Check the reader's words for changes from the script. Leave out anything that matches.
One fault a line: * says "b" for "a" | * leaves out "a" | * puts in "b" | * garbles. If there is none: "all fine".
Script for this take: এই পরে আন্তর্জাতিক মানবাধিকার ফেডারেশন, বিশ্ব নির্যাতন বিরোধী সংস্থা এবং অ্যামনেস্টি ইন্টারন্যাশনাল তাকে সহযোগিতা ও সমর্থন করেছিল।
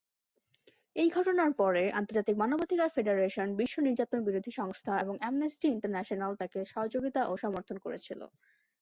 * puts in "ঘটনার"